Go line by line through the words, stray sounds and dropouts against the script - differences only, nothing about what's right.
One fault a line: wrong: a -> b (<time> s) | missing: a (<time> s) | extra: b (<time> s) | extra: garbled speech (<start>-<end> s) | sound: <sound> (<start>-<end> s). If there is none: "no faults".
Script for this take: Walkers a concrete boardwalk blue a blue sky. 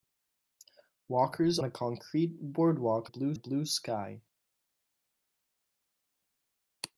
no faults